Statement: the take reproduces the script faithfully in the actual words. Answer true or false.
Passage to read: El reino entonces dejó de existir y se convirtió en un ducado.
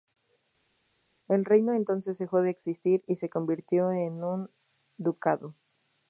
true